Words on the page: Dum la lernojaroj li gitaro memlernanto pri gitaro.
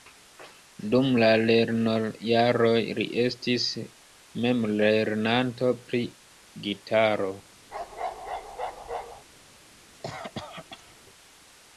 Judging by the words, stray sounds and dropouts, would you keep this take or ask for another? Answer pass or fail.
fail